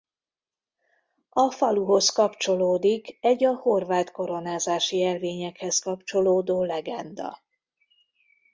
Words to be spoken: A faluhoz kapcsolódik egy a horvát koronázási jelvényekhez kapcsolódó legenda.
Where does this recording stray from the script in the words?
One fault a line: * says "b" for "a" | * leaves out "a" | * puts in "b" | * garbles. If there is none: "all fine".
all fine